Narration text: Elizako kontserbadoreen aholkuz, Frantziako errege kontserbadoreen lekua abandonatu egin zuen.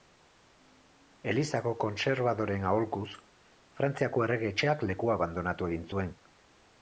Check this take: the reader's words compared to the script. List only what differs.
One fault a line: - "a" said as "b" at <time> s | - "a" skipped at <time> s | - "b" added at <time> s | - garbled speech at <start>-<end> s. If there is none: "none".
- "kontserbadoreen" said as "etxeak" at 4.5 s